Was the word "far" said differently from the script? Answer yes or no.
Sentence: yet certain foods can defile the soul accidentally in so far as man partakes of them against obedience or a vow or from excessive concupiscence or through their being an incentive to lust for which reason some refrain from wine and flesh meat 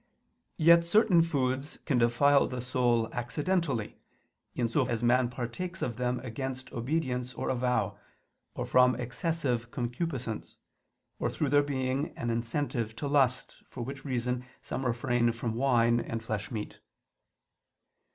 yes